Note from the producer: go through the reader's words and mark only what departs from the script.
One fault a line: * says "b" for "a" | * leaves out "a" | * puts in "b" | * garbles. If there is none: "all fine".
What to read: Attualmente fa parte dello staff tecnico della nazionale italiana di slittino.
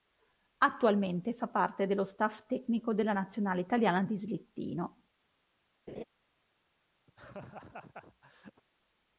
all fine